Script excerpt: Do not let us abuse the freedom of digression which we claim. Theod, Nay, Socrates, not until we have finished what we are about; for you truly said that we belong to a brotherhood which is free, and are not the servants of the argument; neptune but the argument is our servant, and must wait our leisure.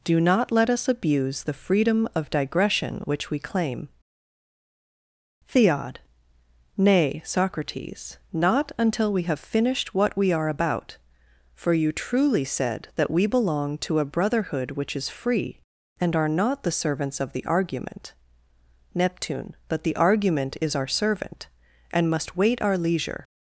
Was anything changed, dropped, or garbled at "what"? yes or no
no